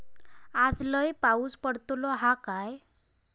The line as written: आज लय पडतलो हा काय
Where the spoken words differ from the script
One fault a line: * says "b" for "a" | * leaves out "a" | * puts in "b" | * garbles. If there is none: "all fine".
* puts in "पाऊस"